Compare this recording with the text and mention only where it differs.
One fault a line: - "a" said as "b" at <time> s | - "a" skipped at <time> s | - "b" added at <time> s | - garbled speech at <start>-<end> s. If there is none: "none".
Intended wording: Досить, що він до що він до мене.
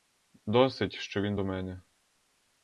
- "що він до" skipped at 1.4 s